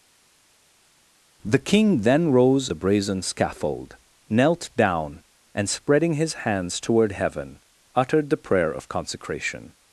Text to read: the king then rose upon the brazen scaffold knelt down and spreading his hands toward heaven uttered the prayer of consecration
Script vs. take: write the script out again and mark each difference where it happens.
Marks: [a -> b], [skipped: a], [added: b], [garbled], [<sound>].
the king then rose [skipped: upon] the brazen scaffold knelt down and spreading his hands toward heaven uttered the prayer of consecration